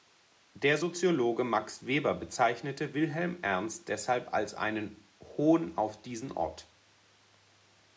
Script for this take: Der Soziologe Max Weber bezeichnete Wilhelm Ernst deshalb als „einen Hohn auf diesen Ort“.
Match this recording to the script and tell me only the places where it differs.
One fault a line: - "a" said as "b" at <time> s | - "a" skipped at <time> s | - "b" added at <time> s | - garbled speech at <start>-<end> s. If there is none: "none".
none